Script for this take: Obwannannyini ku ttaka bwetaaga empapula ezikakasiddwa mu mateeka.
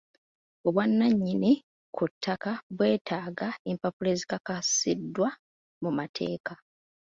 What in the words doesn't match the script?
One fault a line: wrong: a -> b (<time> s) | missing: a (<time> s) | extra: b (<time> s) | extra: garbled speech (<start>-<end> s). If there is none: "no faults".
no faults